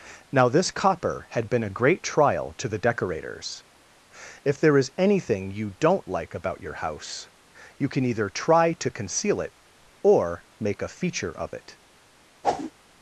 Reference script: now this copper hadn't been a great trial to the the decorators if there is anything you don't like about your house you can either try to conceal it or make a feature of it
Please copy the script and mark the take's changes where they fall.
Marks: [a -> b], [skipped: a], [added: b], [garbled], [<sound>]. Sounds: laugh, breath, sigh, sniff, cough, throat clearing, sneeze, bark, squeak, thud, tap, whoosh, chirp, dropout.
now this copper [hadn't -> had] been a great trial to the [skipped: the] decorators if there is anything you don't like about your house you can either try to conceal it or make a feature of it [whoosh]